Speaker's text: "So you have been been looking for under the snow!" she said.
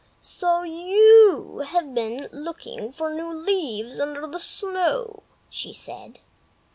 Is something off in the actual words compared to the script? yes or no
yes